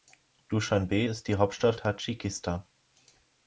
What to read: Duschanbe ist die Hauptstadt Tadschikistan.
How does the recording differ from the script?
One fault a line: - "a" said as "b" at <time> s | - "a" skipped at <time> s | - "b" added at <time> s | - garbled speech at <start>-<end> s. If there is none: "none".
none